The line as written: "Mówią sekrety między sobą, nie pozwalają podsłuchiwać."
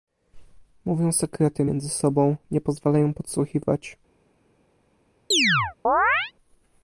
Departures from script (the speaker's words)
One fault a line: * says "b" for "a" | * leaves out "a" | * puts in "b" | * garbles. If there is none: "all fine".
all fine